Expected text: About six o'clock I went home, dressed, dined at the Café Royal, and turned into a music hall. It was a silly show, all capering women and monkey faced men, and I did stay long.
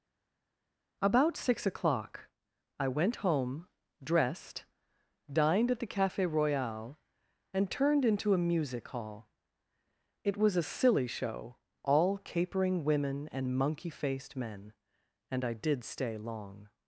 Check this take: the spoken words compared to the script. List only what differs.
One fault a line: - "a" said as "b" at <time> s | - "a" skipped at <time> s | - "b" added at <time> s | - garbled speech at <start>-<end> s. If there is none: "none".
none